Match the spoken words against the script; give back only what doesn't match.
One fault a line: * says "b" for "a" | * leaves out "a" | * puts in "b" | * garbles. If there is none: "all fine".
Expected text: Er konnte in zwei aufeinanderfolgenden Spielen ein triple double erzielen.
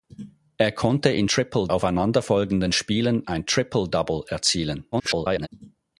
* says "triple" for "zwei"
* garbles